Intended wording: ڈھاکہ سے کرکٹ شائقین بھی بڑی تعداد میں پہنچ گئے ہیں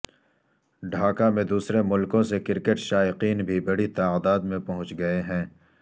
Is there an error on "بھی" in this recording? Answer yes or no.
no